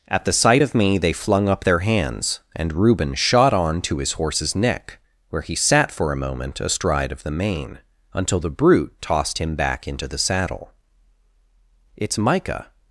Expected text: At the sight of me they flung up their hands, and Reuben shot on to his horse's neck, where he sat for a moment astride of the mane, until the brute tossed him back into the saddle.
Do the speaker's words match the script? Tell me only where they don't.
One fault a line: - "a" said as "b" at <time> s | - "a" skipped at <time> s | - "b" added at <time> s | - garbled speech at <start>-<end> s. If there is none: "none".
- "It's Micah" added at 12.0 s